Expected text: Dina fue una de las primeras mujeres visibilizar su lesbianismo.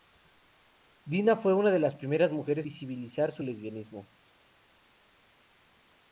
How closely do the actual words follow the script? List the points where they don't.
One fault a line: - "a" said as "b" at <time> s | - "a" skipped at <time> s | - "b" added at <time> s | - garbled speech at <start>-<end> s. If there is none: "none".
none